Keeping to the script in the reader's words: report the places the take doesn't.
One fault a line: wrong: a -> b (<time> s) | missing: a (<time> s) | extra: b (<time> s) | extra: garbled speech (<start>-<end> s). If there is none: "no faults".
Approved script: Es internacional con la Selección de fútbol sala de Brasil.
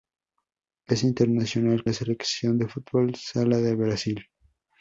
missing: con (1.9 s)